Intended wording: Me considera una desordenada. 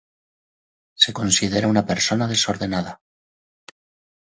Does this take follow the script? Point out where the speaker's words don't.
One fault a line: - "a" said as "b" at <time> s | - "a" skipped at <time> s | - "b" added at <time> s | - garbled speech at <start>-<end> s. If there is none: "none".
- "Me" said as "Se" at 0.9 s
- "persona" added at 1.9 s